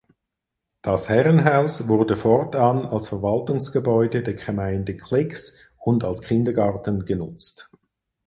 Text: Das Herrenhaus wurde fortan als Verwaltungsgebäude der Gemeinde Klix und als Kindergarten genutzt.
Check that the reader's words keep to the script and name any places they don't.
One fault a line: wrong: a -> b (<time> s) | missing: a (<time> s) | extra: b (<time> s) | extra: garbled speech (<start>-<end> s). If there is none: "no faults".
no faults